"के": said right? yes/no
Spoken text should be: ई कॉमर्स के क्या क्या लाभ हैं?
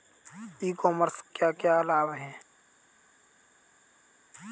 no